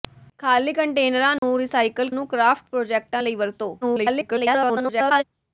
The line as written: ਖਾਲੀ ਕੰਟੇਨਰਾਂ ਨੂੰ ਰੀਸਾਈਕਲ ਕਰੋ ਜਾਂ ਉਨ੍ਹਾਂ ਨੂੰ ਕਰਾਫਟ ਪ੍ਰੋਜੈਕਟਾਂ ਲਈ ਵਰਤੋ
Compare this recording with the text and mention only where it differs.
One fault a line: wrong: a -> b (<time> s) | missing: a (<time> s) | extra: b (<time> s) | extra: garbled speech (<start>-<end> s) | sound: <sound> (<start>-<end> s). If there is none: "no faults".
sound: dropout (1.4-1.4 s)
missing: ਕਰੋ ਜਾਂ ਉਨ੍ਹਾਂ (2.1 s)
extra: garbled speech (3.8-5.2 s)